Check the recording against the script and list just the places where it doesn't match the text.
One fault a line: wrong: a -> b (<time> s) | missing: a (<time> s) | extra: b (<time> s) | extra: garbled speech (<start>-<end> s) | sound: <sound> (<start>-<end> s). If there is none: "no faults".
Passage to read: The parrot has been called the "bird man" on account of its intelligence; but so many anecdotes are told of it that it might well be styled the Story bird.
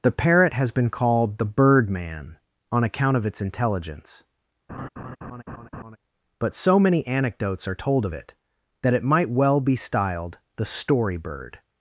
sound: laugh (4.7-6.0 s)